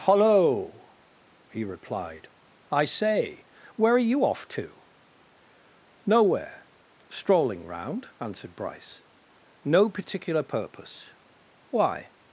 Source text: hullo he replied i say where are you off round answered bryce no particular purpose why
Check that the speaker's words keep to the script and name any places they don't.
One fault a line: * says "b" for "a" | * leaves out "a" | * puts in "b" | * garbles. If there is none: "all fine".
* puts in "to nowhere strolling"